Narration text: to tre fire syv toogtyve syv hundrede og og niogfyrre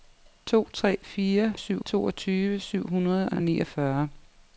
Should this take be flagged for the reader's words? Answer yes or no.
no